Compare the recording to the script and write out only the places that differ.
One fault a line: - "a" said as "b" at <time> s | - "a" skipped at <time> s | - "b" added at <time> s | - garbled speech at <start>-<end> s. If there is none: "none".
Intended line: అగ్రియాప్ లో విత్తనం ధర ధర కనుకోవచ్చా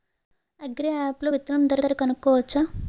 none